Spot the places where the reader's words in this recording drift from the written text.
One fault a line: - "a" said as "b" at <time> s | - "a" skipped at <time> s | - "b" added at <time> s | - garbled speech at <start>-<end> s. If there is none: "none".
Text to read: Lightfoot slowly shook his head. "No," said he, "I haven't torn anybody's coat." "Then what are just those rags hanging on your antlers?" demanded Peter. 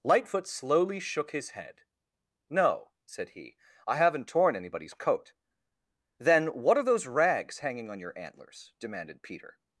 - "just" skipped at 6.8 s